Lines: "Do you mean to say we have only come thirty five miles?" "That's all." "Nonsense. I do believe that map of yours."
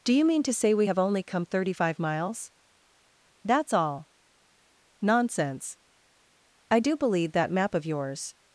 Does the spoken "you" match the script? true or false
true